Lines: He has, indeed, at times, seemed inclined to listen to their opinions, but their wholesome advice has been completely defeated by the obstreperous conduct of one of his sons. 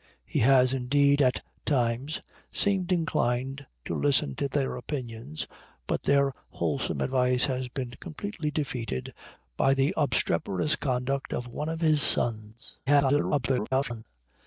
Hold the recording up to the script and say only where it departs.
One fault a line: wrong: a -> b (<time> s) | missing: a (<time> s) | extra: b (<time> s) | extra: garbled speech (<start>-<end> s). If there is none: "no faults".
extra: garbled speech (12.9-14.0 s)